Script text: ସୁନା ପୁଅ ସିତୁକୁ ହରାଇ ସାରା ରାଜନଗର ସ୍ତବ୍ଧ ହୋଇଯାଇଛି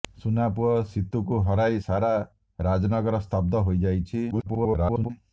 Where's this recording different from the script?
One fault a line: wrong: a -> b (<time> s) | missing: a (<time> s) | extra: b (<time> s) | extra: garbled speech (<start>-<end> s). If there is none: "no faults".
extra: garbled speech (4.3-5.1 s)